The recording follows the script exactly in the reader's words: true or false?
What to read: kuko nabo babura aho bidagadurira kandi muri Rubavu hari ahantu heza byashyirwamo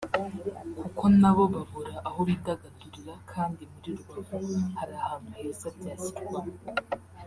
true